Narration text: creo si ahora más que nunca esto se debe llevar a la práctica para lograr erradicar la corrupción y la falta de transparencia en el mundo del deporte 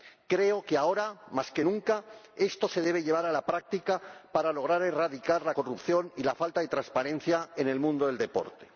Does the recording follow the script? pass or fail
fail